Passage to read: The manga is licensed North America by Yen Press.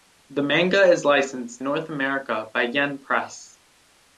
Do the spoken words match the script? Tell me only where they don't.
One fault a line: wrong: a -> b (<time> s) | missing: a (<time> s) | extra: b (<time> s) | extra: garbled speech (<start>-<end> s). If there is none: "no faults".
no faults